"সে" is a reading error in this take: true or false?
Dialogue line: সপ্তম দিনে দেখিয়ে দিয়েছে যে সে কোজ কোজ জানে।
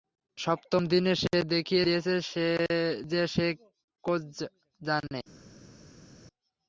false